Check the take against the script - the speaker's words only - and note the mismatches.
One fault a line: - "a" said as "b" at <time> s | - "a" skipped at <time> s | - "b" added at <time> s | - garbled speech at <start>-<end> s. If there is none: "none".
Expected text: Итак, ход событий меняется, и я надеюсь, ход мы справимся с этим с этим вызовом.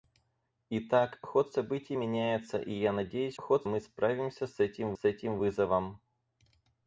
none